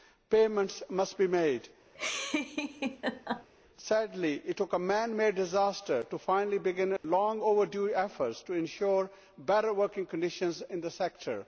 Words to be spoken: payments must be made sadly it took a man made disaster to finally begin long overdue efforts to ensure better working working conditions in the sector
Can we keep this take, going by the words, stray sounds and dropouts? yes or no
no